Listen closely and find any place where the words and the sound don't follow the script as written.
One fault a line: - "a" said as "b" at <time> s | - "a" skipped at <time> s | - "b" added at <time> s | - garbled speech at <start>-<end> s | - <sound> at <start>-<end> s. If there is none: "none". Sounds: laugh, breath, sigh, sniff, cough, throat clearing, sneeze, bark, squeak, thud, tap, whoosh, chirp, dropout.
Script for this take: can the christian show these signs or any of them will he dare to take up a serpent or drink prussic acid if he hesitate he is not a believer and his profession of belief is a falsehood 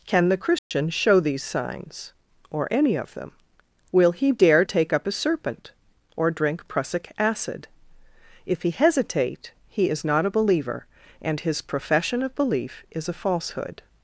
- dropout at 0.6-0.7 s
- "to" skipped at 4.6 s